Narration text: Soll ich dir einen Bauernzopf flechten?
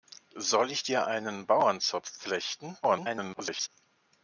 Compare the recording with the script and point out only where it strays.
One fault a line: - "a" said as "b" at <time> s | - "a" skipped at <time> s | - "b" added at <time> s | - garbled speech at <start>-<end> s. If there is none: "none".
- garbled speech at 2.8-3.7 s